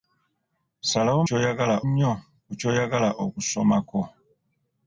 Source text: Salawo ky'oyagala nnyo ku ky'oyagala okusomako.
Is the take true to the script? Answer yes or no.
yes